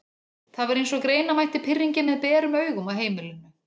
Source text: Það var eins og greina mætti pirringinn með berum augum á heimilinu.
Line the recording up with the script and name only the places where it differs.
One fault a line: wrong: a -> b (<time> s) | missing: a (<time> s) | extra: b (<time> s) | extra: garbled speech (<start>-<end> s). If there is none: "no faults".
no faults